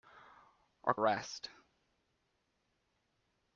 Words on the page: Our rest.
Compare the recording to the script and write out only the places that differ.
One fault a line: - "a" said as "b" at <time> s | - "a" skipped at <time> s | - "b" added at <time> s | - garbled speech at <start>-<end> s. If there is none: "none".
none